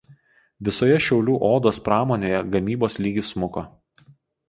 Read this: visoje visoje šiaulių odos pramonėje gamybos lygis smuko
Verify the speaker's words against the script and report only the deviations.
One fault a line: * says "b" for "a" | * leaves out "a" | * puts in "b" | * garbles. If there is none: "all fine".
* leaves out "visoje"